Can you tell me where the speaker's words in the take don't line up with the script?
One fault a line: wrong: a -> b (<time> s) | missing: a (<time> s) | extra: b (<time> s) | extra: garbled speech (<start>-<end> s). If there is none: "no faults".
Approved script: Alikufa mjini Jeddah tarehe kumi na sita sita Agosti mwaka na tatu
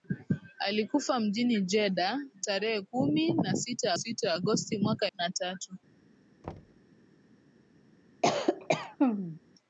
no faults